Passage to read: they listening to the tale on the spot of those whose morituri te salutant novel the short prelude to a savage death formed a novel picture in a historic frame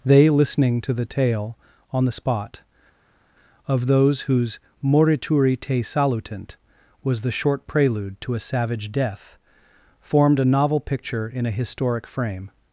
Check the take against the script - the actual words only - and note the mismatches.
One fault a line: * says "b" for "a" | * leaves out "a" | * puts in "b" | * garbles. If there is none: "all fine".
* says "was" for "novel"